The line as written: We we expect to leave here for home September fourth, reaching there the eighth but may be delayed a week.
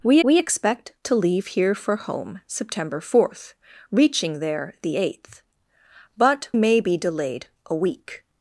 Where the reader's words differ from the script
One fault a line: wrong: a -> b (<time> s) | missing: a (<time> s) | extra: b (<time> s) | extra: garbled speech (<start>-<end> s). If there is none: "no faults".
no faults